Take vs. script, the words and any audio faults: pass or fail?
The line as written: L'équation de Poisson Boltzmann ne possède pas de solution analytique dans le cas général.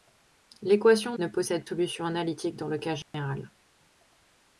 fail